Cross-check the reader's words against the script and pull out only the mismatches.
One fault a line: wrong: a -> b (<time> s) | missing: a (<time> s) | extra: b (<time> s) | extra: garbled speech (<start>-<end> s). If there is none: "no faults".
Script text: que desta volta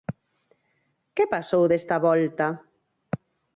extra: pasou (1.3 s)